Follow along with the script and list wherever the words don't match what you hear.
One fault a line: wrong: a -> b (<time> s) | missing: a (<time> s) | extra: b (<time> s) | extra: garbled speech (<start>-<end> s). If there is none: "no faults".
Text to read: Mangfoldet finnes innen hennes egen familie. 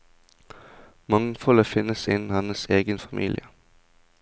no faults